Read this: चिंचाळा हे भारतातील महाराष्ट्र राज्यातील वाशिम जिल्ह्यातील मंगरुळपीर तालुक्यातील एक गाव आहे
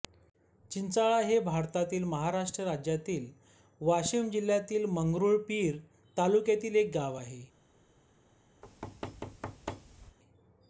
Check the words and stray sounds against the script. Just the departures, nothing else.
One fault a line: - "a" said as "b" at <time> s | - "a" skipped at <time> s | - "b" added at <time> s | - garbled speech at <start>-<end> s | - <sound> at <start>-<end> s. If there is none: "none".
- thud at 8.6-10.2 s